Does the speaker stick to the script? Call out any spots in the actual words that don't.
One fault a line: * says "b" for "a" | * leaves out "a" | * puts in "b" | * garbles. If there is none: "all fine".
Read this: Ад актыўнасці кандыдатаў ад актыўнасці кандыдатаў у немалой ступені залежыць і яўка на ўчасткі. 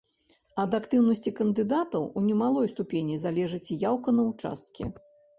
* leaves out "ад актыўнасці кандыдатаў"